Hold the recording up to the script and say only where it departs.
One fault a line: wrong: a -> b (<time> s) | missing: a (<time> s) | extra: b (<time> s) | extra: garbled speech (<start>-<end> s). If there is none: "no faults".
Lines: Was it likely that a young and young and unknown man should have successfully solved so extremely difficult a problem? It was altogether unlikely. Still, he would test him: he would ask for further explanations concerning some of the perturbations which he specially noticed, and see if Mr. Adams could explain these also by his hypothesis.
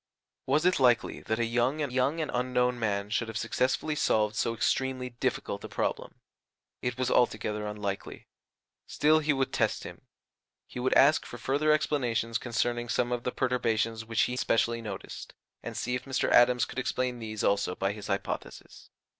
no faults